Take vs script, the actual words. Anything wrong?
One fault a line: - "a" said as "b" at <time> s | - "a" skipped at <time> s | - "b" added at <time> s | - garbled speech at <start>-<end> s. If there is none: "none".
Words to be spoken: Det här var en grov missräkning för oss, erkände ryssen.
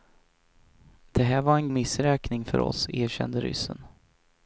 - "grov" skipped at 1.7 s